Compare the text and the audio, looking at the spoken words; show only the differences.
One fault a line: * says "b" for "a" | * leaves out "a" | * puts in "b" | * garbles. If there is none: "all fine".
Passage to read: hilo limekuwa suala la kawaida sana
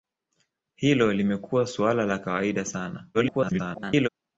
* garbles